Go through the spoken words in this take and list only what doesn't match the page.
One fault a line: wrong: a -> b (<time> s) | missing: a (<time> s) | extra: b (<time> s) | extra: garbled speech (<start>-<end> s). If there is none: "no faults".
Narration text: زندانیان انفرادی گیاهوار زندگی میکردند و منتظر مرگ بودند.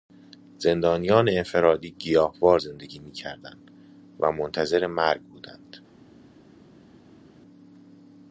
no faults